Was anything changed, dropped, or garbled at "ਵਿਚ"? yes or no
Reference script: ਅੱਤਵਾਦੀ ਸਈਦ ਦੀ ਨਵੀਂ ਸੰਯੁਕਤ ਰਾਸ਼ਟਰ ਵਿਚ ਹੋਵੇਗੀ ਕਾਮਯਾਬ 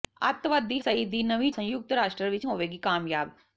no